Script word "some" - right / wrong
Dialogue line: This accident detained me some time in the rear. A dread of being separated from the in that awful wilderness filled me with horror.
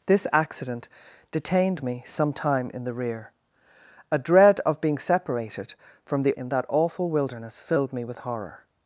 right